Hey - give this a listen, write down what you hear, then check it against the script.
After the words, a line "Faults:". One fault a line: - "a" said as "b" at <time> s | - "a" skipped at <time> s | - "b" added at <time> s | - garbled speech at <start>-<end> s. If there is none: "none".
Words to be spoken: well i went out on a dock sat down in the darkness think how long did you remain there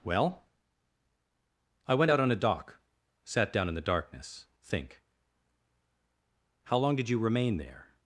well i went out on a dock sat down in the darkness think how long did you remain there
Faults:
none